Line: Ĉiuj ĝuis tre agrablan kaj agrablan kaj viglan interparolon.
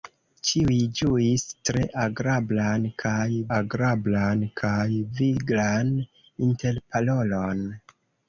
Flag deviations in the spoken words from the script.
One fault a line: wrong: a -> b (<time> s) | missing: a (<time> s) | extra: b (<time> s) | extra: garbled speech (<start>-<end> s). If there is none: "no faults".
no faults